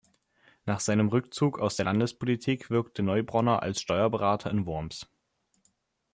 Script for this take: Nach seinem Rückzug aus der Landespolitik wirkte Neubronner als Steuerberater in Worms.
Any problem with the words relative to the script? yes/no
no